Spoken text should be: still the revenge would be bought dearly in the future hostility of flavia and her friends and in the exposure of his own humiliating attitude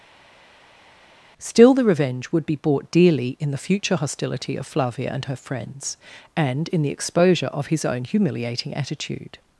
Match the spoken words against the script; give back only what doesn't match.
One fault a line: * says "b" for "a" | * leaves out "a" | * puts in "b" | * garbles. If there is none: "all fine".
all fine